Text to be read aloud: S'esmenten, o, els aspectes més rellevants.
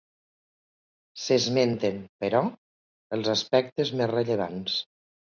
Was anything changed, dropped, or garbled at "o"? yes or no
yes